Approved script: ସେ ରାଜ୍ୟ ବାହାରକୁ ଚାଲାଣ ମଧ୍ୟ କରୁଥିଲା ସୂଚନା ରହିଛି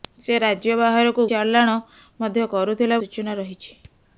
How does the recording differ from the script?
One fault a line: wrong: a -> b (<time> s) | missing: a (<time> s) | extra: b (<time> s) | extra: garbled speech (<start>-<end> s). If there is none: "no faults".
no faults